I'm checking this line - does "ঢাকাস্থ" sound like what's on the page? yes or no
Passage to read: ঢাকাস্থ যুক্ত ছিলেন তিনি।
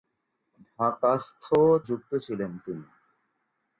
yes